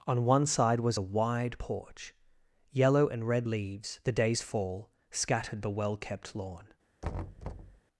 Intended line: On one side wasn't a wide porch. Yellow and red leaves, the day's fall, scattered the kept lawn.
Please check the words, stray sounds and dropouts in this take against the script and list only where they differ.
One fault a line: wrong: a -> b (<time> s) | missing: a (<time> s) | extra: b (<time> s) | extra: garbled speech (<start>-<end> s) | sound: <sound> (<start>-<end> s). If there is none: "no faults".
wrong: wasn't -> was (0.8 s)
extra: well (5.7 s)
sound: thud (7.0-7.8 s)